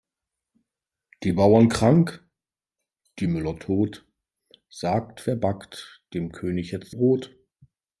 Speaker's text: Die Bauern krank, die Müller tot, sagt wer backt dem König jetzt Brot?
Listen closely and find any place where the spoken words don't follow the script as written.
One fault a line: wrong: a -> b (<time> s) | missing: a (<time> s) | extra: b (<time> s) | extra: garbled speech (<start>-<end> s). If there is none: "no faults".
no faults